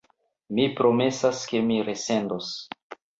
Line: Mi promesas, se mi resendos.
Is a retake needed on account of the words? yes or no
yes